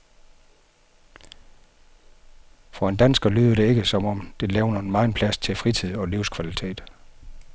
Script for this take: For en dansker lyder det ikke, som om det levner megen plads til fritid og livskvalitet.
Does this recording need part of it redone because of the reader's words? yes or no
no